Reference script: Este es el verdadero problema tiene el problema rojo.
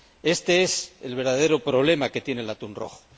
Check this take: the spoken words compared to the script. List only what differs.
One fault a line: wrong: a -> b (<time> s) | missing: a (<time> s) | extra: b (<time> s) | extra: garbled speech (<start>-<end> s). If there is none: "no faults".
extra: que (2.1 s)
wrong: problema -> atún (2.5 s)